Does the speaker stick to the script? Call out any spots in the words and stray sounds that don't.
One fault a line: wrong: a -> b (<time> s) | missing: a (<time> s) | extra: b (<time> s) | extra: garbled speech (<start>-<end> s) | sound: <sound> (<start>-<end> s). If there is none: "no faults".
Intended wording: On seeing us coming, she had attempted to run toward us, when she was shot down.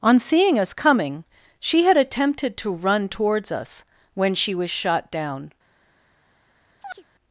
wrong: toward -> towards (3.1 s)
sound: chirp (6.8-7.0 s)